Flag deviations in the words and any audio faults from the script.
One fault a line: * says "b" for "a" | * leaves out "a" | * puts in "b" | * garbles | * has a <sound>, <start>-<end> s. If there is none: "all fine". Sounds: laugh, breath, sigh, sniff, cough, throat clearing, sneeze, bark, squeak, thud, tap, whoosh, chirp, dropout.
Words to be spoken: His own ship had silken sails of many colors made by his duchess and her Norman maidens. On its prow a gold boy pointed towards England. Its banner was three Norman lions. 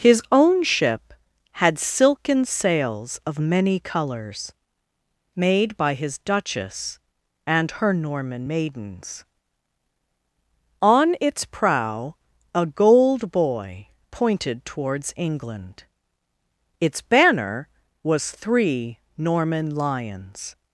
all fine